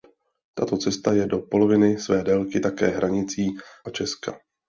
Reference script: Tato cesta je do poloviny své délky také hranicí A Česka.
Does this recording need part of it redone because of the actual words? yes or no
no